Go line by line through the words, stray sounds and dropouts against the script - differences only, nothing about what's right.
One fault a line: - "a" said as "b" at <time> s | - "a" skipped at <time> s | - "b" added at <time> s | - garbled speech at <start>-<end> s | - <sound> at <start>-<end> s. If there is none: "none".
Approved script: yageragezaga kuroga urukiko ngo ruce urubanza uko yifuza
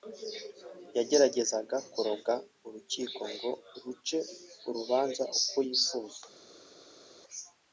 none